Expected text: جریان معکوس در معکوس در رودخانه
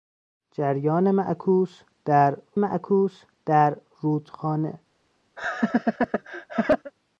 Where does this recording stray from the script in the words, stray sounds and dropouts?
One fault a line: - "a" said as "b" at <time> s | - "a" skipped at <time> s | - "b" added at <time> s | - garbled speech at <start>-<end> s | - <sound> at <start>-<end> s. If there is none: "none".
- laugh at 5.4-6.9 s